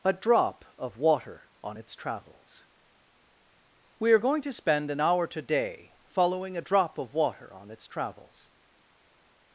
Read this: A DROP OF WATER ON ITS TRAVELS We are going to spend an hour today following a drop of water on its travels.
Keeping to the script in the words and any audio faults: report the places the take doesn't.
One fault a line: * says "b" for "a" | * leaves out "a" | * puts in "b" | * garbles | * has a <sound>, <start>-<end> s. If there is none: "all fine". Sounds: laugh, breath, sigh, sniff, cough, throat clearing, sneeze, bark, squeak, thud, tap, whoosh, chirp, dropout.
all fine